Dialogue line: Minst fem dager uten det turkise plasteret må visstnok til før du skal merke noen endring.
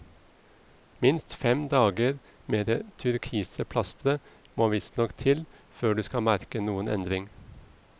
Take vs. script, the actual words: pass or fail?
fail